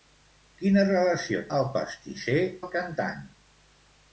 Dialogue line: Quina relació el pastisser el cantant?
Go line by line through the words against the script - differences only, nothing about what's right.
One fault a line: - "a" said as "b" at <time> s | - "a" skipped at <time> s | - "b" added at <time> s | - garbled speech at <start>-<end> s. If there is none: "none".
none